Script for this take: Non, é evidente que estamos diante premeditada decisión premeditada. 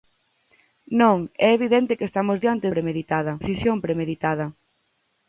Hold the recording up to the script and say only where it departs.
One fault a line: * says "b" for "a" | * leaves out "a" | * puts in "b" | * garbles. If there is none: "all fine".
all fine